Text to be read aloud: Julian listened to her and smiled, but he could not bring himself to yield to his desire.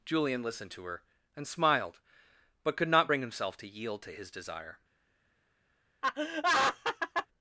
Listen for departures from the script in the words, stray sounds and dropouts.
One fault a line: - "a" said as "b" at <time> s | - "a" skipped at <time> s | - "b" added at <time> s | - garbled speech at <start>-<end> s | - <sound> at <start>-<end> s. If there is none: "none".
- "he" skipped at 2.8 s
- laugh at 6.0-7.3 s